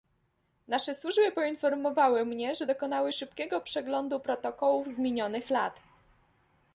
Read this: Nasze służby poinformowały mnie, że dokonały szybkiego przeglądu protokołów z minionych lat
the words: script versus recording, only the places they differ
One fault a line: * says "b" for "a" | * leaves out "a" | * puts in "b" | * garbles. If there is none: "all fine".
all fine